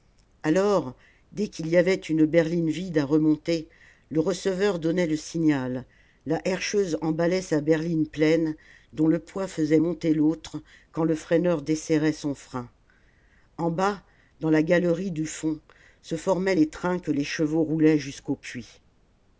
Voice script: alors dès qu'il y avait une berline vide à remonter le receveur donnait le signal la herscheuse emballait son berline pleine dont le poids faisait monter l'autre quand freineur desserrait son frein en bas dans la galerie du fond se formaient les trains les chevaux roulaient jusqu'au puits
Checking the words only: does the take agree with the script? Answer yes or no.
no